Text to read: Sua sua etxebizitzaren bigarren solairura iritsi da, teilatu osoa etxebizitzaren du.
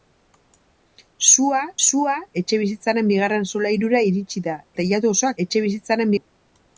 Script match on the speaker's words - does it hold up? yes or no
yes